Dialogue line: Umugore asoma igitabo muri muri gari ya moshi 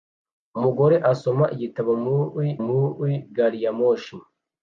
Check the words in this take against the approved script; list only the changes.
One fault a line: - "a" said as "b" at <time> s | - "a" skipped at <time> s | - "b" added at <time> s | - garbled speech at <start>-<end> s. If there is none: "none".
none